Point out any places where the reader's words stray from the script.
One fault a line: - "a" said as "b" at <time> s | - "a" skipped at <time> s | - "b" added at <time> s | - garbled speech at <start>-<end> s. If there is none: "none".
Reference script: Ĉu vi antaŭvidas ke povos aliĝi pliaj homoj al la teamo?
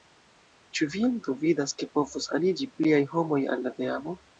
none